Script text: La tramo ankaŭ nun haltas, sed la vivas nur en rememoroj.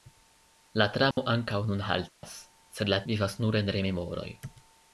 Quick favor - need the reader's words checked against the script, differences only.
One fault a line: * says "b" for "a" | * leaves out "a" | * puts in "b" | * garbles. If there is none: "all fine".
all fine